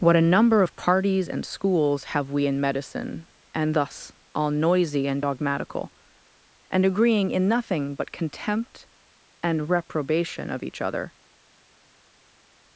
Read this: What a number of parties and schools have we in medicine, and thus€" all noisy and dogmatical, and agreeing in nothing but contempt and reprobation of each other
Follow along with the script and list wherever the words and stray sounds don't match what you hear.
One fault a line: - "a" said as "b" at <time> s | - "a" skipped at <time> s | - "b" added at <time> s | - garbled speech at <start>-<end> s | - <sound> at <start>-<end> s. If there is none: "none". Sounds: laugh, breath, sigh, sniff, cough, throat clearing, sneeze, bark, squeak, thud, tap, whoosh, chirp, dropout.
none